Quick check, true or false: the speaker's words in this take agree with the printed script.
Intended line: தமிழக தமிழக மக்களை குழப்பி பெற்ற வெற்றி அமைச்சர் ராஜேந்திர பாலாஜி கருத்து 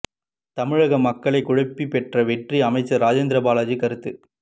false